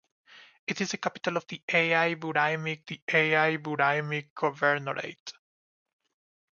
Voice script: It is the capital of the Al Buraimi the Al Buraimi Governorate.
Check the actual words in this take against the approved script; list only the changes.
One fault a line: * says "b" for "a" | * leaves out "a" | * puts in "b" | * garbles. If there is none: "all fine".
all fine